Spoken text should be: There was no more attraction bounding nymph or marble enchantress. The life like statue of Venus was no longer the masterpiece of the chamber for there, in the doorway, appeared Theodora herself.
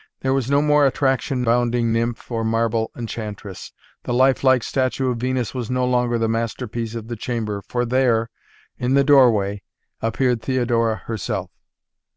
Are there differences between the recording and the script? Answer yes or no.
no